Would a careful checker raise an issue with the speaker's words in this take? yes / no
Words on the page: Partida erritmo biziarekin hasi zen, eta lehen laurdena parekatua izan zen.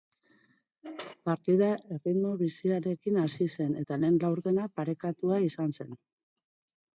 no